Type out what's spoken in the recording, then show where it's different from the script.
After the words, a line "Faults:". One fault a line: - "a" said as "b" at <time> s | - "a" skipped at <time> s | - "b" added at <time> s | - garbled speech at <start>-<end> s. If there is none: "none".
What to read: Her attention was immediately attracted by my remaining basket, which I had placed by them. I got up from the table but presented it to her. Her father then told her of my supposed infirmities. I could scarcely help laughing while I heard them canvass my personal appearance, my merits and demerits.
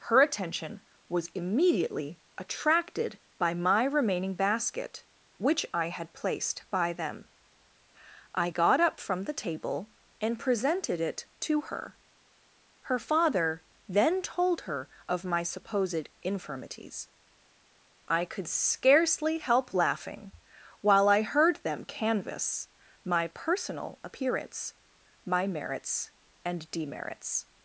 Her attention was immediately attracted by my remaining basket, which I had placed by them. I got up from the table and presented it to her. Her father then told her of my supposed infirmities. I could scarcely help laughing while I heard them canvass my personal appearance, my merits and demerits.
Faults:
- "but" said as "and" at 10.2 s